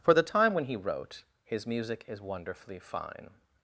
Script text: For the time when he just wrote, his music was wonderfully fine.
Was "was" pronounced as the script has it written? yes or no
no